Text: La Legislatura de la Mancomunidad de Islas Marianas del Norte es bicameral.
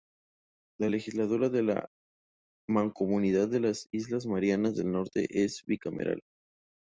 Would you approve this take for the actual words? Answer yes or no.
no